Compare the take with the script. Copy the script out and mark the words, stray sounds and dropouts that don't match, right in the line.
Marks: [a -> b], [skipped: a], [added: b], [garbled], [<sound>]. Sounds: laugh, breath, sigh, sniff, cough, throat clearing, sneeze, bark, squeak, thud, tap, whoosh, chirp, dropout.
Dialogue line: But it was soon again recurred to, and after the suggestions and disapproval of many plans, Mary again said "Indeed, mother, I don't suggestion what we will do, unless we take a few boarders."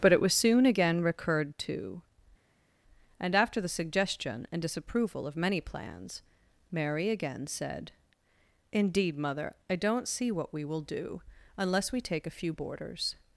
But it was soon again recurred to, and after the [suggestions -> suggestion] and disapproval of many plans, Mary again said "Indeed, mother, I don't [suggestion -> see] what we will do, unless we take a few boarders."